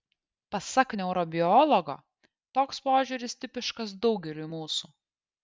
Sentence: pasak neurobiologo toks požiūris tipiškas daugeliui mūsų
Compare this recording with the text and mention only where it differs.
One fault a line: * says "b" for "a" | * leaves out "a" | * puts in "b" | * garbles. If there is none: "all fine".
all fine